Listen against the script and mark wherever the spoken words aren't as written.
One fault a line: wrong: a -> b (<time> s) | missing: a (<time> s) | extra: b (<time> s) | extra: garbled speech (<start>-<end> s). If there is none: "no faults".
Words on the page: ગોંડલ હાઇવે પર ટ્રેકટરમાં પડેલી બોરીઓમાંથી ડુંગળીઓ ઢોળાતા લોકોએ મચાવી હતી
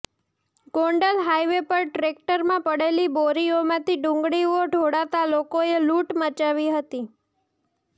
extra: લૂંટ (5.8 s)